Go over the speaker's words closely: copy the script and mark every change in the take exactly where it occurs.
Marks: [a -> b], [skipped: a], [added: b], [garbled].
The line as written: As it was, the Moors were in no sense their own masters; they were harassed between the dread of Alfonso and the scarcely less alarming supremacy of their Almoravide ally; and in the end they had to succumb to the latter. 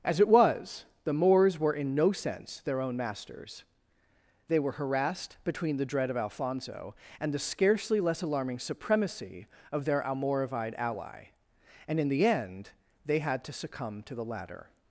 As it was, the Moors were in no sense their own masters; they were harassed between the dread of Alfonso and the scarcely less alarming supremacy of their Almoravide ally; and in the end they had to succumb to the latter.